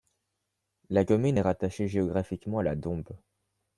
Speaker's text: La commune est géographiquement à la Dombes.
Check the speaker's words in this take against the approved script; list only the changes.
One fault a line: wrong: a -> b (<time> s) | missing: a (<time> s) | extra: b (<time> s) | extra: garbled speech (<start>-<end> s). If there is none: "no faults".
extra: rattachée (1.4 s)